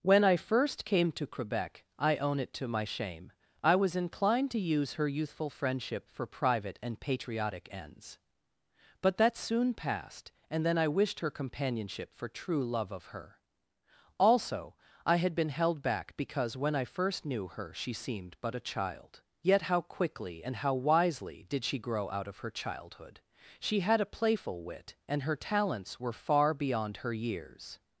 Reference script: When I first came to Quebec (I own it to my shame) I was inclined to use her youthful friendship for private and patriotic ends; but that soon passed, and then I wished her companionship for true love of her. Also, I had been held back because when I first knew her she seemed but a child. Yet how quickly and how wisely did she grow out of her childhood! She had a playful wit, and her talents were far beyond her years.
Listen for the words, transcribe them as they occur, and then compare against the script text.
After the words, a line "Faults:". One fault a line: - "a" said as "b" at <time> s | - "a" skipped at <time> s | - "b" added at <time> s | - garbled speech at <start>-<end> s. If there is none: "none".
When I first came to Quebec (I own it to my shame) I was inclined to use her youthful friendship for private and patriotic ends; but that soon passed, and then I wished her companionship for true love of her. Also, I had been held back because when I first knew her she seemed but a child. Yet how quickly and how wisely did she grow out of her childhood! She had a playful wit, and her talents were far beyond her years.
Faults:
none